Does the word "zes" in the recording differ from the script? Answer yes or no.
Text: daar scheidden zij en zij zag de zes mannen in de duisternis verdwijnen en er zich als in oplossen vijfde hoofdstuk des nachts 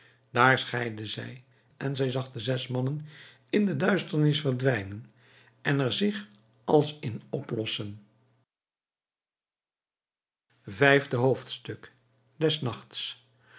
no